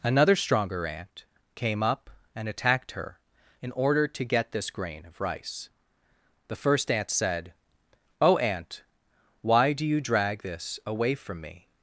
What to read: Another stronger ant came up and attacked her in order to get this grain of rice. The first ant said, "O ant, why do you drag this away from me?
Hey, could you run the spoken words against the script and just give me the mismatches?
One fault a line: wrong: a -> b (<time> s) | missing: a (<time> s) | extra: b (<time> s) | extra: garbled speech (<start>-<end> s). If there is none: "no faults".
no faults